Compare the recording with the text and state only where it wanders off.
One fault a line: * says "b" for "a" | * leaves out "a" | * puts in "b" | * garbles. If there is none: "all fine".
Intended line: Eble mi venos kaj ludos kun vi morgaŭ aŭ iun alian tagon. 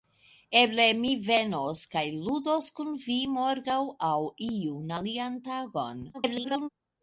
* garbles